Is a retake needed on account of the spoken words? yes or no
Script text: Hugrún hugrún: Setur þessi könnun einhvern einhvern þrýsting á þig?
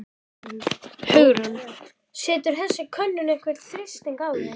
yes